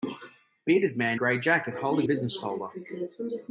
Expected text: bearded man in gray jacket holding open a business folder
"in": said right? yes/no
no